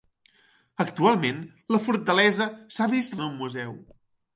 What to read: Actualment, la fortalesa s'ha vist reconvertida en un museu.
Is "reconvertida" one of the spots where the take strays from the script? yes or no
yes